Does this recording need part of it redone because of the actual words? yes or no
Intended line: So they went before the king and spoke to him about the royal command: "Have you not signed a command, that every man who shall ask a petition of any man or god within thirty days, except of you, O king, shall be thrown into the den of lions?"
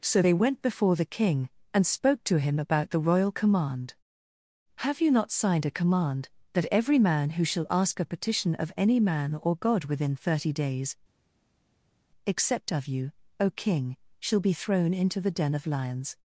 no